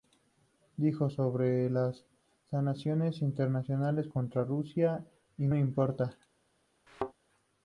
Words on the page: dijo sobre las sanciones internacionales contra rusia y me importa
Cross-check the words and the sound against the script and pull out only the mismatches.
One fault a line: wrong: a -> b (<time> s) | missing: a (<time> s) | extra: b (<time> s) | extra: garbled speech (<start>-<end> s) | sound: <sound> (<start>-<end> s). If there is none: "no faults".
sound: thud (6.9-7.1 s)